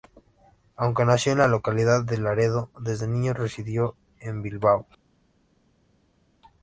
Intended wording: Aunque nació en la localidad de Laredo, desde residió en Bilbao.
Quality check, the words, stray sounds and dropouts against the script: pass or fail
fail